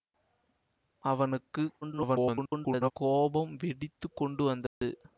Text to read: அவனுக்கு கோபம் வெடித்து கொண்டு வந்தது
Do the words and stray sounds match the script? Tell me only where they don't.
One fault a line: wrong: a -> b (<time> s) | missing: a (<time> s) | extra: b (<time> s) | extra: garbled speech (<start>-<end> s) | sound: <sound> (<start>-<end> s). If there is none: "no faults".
extra: garbled speech (1.8-2.9 s)
sound: dropout (4.7-4.8 s)